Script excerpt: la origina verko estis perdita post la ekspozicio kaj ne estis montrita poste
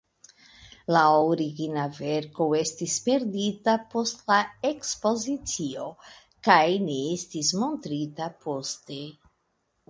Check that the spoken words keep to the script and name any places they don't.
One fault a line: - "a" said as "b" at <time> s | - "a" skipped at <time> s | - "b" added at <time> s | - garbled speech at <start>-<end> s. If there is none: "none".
none